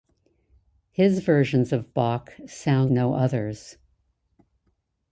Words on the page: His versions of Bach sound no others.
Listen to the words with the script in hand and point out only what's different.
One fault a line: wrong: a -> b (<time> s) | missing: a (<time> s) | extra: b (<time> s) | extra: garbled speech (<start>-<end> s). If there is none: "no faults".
no faults